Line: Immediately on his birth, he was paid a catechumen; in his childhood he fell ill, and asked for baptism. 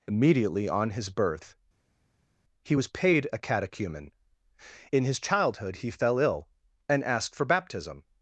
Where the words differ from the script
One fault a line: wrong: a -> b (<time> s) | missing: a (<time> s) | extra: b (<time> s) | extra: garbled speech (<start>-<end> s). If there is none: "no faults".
no faults